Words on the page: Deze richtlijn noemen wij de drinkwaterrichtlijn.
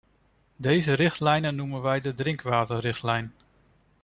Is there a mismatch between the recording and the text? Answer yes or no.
no